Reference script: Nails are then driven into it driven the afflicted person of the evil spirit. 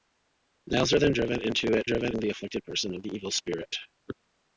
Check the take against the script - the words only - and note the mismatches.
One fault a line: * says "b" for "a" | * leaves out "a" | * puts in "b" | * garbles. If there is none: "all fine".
all fine